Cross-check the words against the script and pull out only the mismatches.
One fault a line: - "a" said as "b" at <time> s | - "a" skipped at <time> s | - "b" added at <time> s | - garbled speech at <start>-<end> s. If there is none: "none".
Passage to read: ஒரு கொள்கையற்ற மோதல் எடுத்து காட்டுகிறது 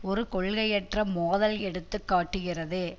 none